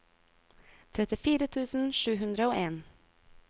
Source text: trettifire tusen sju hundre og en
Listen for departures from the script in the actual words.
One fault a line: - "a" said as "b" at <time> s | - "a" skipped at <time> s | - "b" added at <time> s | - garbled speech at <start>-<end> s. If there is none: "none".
none